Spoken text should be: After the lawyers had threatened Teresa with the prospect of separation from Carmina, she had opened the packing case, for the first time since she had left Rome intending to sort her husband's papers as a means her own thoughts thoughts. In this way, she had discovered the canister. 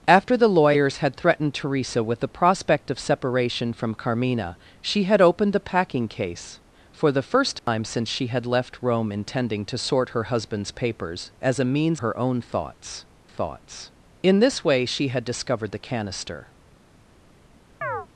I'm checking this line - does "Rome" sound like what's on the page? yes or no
yes